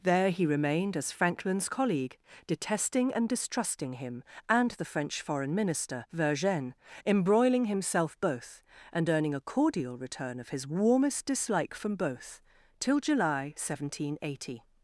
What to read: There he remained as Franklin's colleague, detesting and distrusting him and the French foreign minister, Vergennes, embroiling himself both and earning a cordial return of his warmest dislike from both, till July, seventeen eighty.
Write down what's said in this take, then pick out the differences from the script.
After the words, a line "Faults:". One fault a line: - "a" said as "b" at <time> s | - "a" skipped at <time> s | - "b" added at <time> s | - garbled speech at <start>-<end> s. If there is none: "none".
There he remained as Franklin's colleague, detesting and distrusting him and the French foreign minister, Vergennes, embroiling himself both and earning a cordial return of his warmest dislike from both, till July, seventeen eighty.
Faults:
none